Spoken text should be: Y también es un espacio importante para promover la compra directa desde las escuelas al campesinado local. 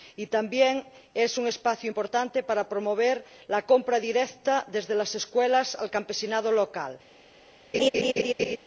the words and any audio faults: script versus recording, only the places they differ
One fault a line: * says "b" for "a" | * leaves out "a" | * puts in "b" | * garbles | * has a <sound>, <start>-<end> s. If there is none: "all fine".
* has a laugh, 7.7-8.6 s